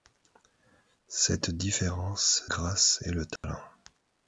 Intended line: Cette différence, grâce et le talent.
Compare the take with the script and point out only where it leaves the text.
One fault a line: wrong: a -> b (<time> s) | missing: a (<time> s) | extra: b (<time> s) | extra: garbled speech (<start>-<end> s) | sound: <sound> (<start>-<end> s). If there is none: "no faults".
sound: dropout (3.4-3.4 s)